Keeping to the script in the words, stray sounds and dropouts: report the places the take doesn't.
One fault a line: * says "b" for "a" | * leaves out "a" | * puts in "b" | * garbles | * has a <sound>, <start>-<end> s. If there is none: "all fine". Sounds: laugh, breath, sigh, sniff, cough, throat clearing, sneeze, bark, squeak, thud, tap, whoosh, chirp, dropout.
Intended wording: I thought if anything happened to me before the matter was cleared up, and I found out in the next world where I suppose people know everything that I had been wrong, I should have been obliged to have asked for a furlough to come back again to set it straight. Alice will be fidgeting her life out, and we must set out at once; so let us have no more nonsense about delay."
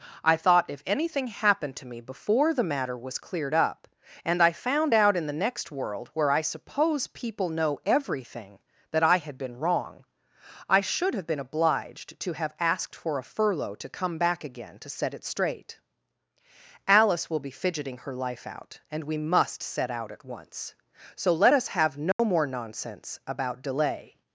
* has a dropout, 22.1-22.2 s